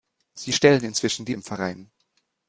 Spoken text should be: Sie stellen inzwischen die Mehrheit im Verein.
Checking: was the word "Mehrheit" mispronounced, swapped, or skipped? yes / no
yes